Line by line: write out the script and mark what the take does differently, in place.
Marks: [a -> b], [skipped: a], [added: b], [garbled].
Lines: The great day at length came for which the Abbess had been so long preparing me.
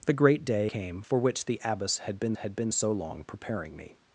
The great day [skipped: at length] came for which the Abbess had been [added: had been] so long preparing me.